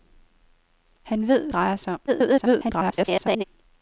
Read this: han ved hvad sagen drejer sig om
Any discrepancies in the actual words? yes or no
yes